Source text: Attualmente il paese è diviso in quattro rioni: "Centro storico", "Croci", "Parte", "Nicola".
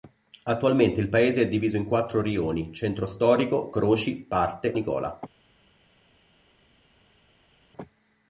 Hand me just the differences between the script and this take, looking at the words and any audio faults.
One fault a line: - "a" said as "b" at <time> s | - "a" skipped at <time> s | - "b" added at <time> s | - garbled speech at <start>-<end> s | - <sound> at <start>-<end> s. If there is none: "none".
none